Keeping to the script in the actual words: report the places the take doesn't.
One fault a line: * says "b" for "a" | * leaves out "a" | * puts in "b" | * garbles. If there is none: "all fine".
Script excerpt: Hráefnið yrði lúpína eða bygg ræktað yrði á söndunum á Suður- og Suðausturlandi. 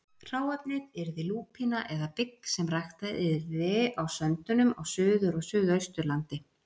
* puts in "sem"